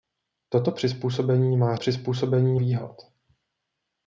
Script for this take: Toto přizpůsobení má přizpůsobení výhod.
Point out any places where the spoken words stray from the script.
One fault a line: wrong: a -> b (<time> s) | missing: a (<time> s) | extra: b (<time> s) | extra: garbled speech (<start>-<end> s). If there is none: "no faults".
no faults